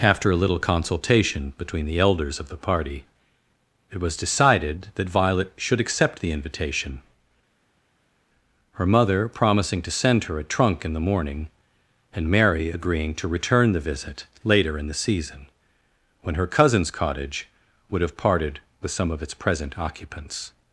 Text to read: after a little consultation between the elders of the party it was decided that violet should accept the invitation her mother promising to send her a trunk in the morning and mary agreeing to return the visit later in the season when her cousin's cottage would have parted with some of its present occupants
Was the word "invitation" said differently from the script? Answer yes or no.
no